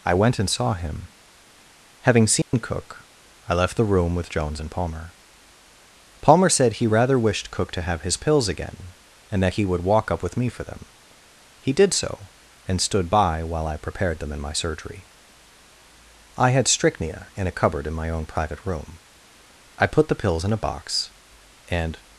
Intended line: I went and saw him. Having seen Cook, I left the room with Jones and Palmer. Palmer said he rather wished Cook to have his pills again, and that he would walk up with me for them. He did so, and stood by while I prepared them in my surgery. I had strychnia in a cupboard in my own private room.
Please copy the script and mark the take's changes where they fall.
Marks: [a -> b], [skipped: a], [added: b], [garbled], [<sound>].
I went and saw him. Having seen [dropout] Cook, I left the room with Jones and Palmer. Palmer said he rather wished Cook to have his pills again, and that he would walk up with me for them. He did so, and stood by while I prepared them in my surgery. I had strychnia in a cupboard in my own private room. [added: I put the pills in a box and]